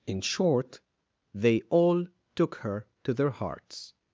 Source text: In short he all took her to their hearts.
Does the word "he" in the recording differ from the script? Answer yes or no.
yes